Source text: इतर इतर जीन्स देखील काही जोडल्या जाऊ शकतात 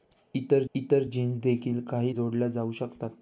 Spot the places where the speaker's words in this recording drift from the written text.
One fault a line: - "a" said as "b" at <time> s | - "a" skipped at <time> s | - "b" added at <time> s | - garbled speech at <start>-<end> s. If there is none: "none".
none